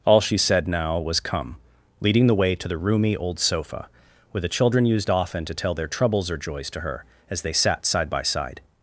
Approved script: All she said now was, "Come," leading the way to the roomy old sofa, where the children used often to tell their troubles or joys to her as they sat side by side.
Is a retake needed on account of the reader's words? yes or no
no